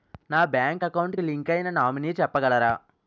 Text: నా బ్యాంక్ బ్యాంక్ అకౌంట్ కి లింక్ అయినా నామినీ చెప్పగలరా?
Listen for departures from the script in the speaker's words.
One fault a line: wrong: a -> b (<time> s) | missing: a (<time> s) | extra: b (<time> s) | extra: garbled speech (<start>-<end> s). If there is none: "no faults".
missing: బ్యాంక్ (0.8 s)